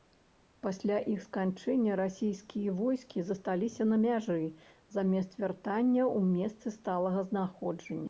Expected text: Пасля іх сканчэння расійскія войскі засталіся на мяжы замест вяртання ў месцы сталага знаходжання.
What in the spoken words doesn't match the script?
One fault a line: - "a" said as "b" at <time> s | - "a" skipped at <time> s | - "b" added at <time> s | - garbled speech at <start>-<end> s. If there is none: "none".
none